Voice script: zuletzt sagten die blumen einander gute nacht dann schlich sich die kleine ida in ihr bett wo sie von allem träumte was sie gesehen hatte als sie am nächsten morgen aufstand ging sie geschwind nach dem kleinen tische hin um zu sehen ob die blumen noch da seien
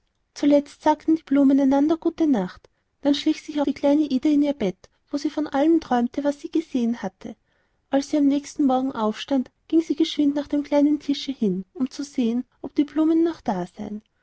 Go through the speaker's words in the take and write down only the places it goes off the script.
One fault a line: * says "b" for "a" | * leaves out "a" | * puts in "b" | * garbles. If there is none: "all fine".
all fine